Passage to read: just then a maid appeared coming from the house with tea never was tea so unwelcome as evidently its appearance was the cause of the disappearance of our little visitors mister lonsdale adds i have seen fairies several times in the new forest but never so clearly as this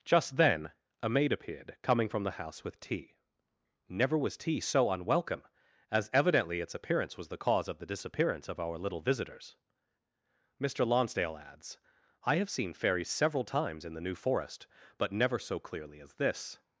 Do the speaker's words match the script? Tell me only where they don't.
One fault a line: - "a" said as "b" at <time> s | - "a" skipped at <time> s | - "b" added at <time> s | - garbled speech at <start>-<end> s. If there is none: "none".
none